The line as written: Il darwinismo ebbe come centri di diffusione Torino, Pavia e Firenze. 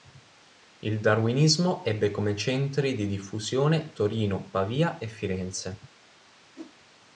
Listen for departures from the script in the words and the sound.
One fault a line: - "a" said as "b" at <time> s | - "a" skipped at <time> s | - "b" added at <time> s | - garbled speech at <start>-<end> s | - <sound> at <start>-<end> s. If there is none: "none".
- whoosh at 6.5-6.7 s